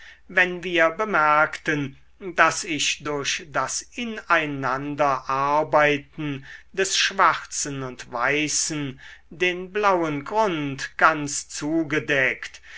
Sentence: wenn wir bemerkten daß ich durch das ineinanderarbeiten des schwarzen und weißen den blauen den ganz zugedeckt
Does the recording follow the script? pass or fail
fail